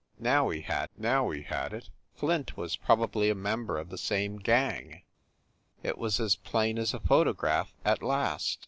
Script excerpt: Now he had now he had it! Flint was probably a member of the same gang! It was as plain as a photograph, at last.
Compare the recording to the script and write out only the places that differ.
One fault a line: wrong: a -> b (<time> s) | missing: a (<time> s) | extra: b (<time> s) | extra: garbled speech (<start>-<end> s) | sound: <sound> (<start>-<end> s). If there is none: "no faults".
no faults